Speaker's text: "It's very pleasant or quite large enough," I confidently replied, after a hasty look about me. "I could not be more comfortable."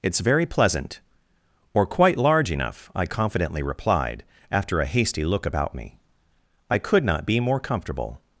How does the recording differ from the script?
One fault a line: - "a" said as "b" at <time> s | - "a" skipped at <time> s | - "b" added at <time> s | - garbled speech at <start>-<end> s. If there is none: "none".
none